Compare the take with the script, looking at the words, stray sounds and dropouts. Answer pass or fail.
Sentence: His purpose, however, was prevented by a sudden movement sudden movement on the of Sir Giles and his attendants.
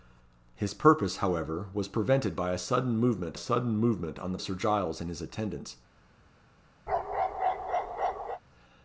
fail